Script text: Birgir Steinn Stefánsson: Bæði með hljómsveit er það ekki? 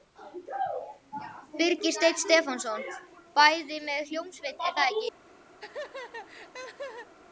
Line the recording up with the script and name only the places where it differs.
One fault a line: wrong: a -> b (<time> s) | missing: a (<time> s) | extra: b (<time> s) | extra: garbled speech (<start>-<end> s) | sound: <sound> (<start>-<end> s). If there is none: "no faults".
sound: laugh (5.6-7.1 s)